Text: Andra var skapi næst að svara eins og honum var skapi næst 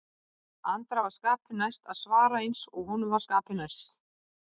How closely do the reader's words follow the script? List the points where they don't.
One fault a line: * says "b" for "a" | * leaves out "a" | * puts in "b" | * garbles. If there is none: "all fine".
all fine